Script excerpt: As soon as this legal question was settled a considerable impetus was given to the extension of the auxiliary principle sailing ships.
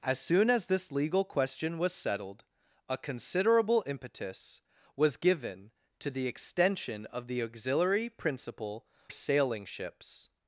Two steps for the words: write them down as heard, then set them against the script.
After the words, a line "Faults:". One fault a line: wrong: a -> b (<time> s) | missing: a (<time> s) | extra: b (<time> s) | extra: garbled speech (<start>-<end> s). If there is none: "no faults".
As soon as this legal question was settled a considerable impetus was given to the extension of the auxiliary principle sailing ships.
Faults:
no faults